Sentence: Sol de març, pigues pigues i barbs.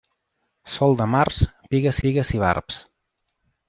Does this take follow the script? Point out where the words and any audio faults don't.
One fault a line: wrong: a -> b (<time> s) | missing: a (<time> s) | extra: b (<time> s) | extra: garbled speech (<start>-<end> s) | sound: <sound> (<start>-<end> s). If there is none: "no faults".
no faults